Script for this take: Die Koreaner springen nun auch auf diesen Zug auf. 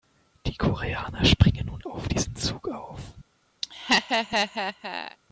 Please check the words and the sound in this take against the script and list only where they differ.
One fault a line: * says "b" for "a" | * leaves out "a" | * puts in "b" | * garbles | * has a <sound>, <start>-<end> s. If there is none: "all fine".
* leaves out "auch"
* has a laugh, 3.6-5.2 s